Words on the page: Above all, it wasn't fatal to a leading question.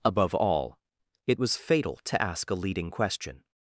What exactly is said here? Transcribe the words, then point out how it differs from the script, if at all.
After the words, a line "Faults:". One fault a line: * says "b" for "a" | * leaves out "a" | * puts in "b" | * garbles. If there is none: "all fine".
Above all, it was fatal to ask a leading question.
Faults:
* says "was" for "wasn't"
* puts in "ask"